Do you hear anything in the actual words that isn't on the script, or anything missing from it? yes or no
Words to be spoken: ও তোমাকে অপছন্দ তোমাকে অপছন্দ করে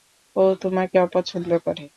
yes